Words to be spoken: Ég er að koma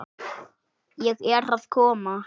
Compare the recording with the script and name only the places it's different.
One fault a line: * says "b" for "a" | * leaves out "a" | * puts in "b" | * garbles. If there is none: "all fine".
all fine